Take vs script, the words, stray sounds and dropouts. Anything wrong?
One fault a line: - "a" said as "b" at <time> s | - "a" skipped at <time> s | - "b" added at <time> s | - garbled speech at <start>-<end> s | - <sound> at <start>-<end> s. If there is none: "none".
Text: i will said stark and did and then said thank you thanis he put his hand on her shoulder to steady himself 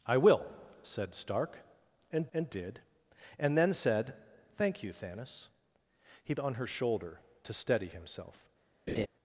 - "and" added at 2.3 s
- "put his hand" skipped at 6.4 s
- laugh at 8.9-9.1 s